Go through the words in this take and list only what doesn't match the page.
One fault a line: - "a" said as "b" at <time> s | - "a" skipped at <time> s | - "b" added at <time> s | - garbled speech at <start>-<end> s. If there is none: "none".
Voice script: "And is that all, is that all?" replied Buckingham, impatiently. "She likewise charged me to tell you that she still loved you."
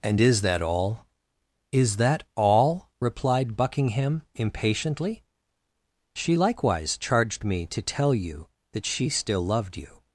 none